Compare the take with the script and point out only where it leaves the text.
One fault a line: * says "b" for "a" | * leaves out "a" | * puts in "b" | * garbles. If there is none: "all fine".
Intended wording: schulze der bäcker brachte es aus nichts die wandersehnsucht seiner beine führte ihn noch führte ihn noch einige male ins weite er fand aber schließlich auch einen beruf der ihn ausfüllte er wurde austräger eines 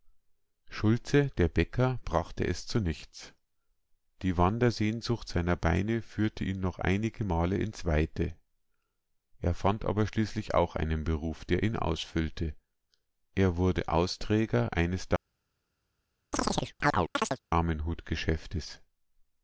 * says "zu" for "aus"
* leaves out "führte ihn noch"